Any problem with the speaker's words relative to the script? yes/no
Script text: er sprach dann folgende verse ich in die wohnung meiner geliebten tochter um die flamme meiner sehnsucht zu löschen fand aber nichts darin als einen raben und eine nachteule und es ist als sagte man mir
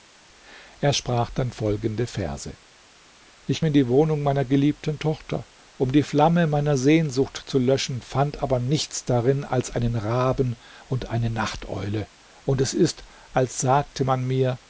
no